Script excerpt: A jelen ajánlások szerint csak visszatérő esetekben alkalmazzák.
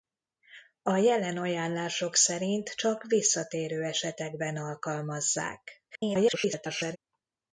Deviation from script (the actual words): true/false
true